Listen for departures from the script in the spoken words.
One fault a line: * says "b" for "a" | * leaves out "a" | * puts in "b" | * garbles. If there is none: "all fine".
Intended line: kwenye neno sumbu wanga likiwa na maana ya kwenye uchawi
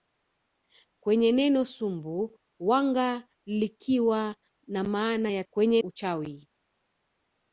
all fine